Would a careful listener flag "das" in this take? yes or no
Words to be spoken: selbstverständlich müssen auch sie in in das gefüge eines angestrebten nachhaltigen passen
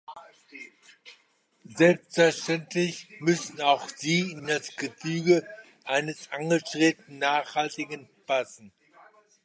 no